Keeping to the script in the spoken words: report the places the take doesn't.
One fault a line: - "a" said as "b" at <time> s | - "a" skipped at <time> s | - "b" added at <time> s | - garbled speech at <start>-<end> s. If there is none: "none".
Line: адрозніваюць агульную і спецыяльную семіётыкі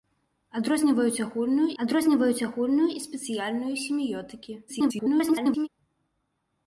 - "адрозніваюць агульную" added at 1.8 s
- garbled speech at 4.7-5.7 s